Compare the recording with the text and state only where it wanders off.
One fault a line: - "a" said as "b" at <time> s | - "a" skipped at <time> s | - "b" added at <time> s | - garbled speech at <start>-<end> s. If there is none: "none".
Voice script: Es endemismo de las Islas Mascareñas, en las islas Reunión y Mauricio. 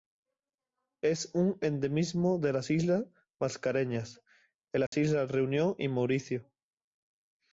- "un" added at 1.4 s